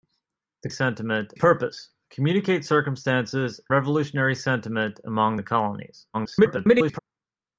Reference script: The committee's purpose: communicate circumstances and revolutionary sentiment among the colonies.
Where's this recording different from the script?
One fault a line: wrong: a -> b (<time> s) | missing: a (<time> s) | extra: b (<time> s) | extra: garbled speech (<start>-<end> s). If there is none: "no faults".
wrong: committee's -> sentiment (0.7 s)
missing: and (3.6 s)
extra: garbled speech (6.1-7.0 s)